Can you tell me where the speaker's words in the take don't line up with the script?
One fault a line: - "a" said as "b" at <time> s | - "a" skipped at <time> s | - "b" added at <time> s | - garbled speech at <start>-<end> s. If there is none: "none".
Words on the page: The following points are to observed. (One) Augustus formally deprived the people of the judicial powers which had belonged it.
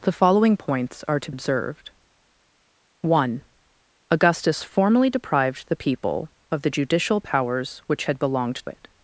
none